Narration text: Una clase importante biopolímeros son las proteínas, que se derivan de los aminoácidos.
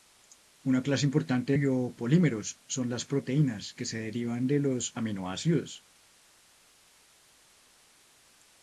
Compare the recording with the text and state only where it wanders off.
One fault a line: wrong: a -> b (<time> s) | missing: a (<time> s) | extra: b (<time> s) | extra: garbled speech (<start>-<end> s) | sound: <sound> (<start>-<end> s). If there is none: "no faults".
no faults